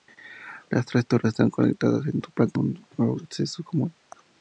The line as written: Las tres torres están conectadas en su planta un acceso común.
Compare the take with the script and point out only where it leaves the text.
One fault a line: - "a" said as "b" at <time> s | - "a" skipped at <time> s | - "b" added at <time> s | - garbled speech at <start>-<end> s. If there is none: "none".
none